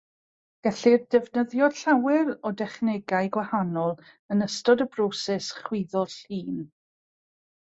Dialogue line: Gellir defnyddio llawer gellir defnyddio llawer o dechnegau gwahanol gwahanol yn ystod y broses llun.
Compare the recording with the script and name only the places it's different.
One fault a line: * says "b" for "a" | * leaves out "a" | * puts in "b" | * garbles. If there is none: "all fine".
* leaves out "gellir defnyddio llawer"
* leaves out "gwahanol"
* puts in "chwyddo"